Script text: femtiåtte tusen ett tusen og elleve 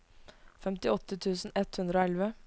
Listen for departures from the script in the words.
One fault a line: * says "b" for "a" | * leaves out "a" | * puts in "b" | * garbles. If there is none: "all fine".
* says "hundre" for "tusen"